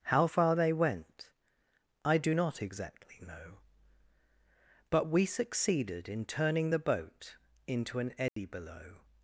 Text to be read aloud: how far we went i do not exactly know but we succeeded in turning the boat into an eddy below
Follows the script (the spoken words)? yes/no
no